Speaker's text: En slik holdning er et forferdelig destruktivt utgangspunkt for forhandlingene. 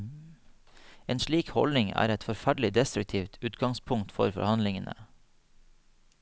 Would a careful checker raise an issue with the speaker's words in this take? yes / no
no